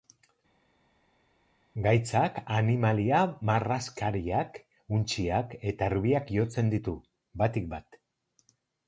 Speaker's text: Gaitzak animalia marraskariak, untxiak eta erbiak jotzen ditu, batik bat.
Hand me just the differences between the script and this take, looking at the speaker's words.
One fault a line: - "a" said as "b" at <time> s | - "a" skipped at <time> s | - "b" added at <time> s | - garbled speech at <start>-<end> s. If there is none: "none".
none